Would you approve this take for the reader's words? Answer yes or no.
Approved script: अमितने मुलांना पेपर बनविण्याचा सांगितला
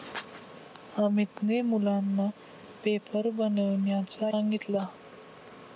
yes